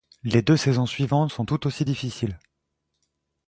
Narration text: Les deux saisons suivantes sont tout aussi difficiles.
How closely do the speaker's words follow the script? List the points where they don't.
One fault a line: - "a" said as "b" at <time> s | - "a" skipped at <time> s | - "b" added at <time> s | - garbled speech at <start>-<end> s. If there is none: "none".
none